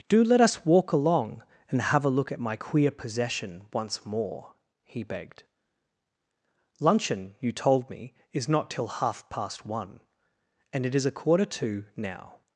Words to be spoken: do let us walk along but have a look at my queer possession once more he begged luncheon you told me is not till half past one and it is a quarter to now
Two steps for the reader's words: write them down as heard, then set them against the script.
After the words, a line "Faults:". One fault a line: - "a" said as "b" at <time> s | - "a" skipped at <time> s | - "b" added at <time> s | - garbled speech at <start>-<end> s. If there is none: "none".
do let us walk along and have a look at my queer possession once more he begged luncheon you told me is not till half past one and it is a quarter to now
Faults:
- "but" said as "and" at 1.7 s